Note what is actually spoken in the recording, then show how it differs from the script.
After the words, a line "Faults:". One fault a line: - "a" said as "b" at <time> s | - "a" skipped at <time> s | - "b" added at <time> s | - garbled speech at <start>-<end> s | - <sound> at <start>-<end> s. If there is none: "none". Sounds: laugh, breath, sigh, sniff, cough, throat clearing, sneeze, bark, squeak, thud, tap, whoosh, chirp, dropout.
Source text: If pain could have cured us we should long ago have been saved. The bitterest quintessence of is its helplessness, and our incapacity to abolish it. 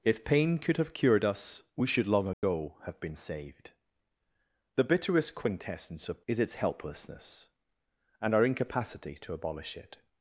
If pain could have cured us we should long ago have been saved. The bitterest quintessence of is its helplessness, and our incapacity to abolish it.
Faults:
- dropout at 2.3-2.4 s